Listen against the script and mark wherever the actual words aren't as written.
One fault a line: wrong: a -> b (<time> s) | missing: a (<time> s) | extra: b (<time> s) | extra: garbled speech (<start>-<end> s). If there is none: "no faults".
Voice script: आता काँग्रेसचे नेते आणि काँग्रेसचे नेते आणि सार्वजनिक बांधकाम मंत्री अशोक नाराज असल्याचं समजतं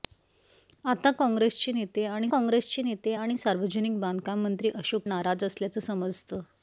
no faults